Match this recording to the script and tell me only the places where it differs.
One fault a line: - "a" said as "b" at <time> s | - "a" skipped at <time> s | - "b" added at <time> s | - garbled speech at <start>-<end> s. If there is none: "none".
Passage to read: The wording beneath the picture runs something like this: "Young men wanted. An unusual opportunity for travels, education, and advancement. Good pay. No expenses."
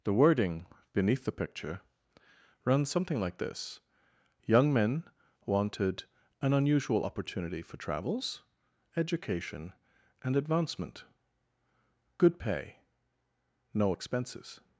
none